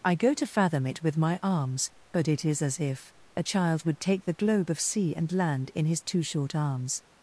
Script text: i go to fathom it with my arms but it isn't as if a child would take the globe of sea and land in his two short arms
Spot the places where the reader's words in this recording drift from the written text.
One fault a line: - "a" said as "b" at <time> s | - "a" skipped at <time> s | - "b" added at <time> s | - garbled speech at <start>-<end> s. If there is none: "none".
- "isn't" said as "is" at 2.4 s